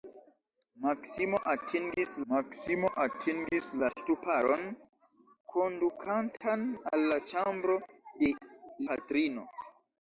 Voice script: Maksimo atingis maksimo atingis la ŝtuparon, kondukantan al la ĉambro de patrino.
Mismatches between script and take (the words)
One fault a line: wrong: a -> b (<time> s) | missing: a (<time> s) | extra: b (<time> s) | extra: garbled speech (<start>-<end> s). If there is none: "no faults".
no faults